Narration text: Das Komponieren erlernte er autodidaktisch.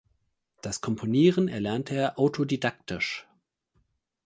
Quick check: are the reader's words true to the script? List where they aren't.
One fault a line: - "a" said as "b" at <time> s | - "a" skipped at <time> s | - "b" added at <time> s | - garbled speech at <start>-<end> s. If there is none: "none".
none